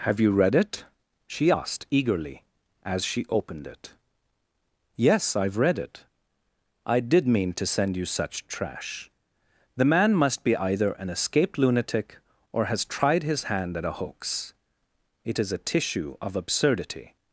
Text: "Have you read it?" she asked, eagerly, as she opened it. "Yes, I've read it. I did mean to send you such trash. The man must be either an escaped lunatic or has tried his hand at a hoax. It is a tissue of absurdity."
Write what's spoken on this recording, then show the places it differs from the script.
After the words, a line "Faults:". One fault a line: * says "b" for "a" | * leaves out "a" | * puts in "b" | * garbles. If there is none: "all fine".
"Have you read it?" she asked, eagerly, as she opened it. "Yes, I've read it. I did mean to send you such trash. The man must be either an escaped lunatic or has tried his hand at a hoax. It is a tissue of absurdity."
Faults:
all fine